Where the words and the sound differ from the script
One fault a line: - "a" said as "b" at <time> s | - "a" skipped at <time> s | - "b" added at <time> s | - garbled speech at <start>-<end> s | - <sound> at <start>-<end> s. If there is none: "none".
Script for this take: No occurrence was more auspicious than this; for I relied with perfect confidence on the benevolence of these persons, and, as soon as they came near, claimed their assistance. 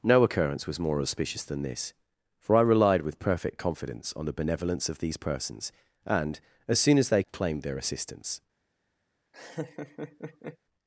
- "came near" skipped at 7.2 s
- laugh at 9.3-10.6 s